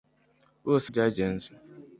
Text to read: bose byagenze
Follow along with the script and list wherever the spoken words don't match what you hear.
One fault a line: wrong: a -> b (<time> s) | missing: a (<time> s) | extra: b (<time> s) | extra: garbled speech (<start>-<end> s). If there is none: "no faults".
no faults